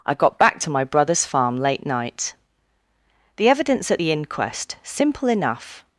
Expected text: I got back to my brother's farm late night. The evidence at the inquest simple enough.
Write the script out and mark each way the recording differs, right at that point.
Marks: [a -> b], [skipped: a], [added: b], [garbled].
I got back to my brother's farm late night. The evidence at the inquest simple enough.